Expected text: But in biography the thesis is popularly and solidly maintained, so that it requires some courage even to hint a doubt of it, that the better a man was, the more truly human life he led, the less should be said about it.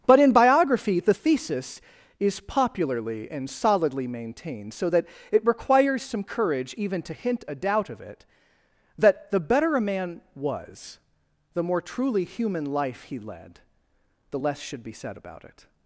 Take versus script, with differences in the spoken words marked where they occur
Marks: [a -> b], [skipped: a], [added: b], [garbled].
But in biography the thesis is popularly and solidly maintained, so that it requires some courage even to hint a doubt of it, that the better a man was, the more truly human life he led, the less should be said about it.